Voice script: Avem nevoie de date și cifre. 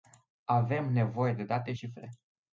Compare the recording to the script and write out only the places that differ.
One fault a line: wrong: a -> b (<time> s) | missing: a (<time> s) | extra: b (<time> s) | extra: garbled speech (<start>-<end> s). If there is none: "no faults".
missing: și (1.7 s)